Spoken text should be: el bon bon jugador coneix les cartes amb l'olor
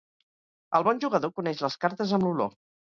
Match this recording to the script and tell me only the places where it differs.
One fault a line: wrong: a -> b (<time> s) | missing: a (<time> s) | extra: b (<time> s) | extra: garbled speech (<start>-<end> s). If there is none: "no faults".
missing: bon (1.0 s)